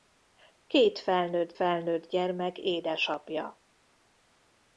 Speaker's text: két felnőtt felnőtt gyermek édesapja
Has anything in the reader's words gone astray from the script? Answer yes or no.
no